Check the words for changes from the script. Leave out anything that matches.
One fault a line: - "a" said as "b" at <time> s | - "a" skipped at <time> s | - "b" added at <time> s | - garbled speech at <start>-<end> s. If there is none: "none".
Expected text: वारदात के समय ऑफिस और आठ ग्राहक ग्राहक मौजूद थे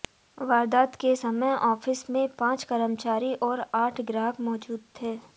- "में पांच कर्मचारी" added at 2.1 s
- "ग्राहक" skipped at 4.4 s